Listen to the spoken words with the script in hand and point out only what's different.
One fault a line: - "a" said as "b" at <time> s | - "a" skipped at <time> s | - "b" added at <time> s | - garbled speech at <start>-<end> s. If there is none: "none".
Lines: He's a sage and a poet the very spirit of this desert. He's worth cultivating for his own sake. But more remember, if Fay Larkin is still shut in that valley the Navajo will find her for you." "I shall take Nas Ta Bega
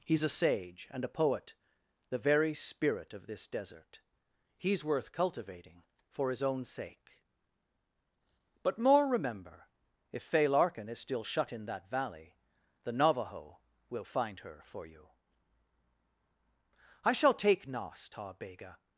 none